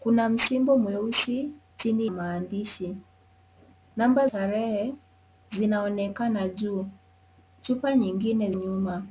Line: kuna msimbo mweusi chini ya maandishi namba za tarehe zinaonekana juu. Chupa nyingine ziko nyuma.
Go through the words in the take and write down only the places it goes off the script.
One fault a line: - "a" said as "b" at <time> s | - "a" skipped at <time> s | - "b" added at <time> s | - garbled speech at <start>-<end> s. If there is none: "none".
- "ya" skipped at 2.1 s
- "za" skipped at 4.3 s
- "ziko" skipped at 8.5 s